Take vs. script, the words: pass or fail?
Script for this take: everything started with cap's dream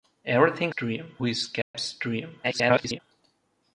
fail